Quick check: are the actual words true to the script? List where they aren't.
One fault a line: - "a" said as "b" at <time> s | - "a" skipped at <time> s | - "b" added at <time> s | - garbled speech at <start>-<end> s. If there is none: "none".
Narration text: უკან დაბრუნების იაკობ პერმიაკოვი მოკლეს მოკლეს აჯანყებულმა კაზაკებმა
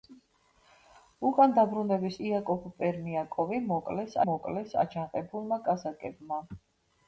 none